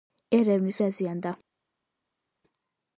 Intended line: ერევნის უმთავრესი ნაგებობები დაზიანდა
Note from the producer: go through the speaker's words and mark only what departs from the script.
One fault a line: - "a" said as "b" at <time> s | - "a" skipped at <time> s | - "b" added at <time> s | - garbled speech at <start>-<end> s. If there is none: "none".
- "უმთავრესი ნაგებობები" skipped at 0.8 s